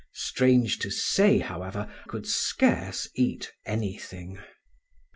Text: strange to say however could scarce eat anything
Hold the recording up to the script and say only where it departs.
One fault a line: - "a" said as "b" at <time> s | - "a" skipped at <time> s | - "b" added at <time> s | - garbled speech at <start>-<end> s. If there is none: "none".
none